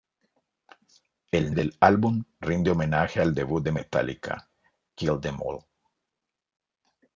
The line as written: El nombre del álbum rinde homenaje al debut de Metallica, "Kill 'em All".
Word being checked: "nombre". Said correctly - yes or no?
no